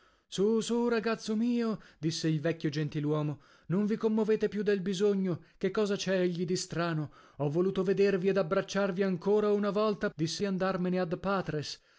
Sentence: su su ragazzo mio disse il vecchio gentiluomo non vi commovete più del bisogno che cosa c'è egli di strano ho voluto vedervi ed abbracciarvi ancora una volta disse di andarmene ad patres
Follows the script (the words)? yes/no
yes